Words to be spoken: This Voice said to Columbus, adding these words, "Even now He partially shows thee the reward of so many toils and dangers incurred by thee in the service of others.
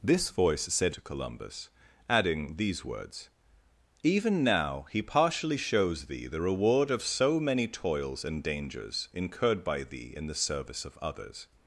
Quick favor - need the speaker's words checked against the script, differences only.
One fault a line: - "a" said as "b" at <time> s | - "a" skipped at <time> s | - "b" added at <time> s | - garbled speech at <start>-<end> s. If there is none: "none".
none